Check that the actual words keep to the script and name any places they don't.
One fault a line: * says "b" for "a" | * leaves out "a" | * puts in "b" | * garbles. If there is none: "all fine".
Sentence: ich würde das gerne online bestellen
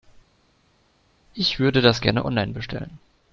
all fine